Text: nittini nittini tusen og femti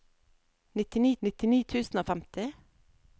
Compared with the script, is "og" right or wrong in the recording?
right